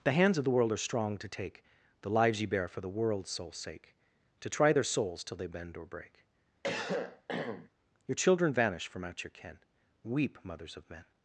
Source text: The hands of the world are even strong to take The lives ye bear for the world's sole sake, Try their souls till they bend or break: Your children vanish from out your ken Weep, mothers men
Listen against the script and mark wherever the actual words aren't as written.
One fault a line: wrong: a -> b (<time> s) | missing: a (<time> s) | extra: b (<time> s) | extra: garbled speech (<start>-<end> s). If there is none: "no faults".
missing: even (0.8 s)
extra: To (4.4 s)
extra: of (10.8 s)